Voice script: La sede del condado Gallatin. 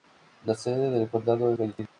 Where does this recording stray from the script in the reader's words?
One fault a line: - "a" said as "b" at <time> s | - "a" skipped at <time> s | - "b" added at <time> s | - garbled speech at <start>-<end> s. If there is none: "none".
none